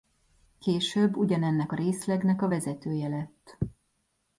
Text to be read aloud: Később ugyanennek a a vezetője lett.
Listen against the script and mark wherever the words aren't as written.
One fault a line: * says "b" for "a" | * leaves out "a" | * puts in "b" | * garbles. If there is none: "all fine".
* puts in "részlegnek"